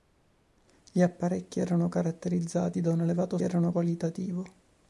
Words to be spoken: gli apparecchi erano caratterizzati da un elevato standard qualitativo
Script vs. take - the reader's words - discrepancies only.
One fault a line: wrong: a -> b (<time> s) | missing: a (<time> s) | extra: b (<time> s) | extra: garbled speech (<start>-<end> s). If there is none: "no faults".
wrong: standard -> erano (3.4 s)